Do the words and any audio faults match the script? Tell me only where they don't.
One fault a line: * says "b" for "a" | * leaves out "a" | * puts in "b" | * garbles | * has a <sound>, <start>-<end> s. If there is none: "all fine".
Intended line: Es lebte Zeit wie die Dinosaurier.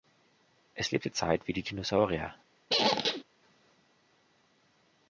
* has a squeak, 2.7-3.2 s